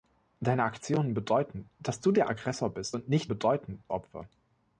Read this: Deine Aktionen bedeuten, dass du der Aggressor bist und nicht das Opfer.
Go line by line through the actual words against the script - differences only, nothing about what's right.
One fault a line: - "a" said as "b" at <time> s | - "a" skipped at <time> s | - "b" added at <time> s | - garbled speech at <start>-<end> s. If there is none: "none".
- "das" said as "bedeuten" at 3.3 s